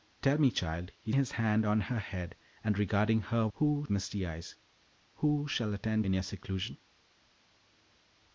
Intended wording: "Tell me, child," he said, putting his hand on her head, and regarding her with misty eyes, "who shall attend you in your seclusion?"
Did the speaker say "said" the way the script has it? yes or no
no